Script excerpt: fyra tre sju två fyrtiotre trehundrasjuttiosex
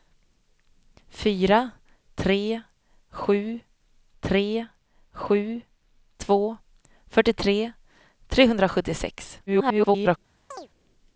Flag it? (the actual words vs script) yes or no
yes